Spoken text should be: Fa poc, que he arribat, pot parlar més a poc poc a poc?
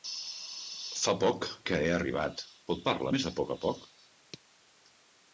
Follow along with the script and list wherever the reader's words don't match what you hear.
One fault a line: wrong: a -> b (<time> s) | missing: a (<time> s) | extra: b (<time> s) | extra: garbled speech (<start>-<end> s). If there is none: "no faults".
missing: poc (3.5 s)